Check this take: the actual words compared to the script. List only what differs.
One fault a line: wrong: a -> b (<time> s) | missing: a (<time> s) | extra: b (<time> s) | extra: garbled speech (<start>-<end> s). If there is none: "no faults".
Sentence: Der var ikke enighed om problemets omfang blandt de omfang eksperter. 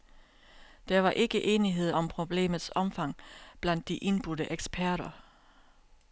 wrong: omfang -> indbudte (4.0 s)